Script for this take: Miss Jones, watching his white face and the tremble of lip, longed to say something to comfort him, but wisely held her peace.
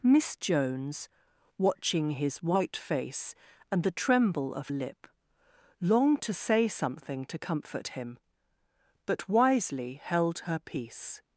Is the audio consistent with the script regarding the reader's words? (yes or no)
yes